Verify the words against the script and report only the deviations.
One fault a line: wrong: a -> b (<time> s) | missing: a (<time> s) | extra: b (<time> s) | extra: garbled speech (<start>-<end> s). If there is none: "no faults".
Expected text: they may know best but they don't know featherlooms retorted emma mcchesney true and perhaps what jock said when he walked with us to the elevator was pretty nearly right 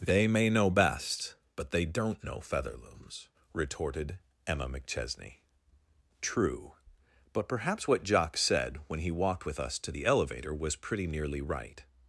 wrong: and -> but (7.3 s)